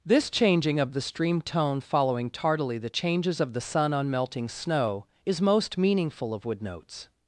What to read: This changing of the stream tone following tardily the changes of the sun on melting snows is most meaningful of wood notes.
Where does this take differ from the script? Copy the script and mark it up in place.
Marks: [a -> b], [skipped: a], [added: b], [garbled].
This changing of the stream tone following tardily the changes of the sun on melting [snows -> snow] is most meaningful of wood notes.